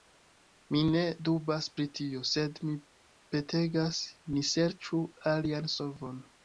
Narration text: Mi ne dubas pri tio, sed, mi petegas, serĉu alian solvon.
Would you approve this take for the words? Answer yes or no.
no